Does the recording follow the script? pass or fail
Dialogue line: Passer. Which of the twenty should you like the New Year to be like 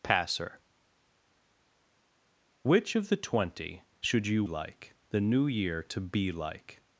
pass